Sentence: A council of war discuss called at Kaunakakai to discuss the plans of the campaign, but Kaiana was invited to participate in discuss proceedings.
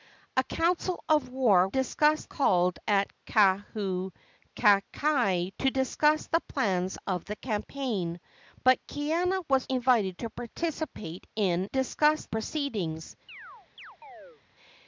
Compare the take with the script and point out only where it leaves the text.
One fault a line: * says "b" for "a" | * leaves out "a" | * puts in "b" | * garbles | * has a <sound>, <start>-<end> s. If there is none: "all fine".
* has a chirp, 13.3-14.4 s